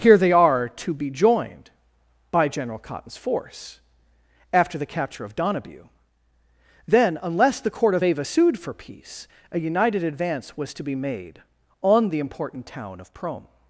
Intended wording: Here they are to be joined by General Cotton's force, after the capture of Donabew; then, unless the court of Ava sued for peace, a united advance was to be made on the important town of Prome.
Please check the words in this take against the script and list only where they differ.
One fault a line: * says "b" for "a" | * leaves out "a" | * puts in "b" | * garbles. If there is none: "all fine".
all fine